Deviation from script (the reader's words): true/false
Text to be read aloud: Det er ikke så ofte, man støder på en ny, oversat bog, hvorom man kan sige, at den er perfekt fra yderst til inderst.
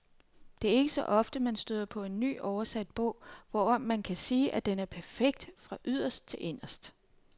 false